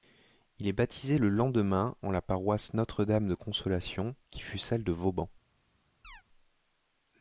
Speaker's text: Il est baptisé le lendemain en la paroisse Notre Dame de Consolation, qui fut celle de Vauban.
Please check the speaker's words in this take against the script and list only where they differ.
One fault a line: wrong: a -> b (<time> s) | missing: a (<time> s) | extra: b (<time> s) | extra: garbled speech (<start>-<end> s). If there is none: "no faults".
no faults